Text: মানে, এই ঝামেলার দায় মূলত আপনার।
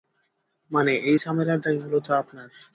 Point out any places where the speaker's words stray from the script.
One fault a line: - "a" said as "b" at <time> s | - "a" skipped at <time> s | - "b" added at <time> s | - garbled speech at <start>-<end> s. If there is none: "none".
none